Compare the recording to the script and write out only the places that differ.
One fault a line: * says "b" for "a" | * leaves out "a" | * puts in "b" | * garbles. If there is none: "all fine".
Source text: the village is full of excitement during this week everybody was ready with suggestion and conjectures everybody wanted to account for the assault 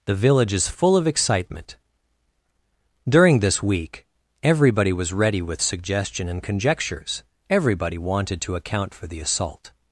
all fine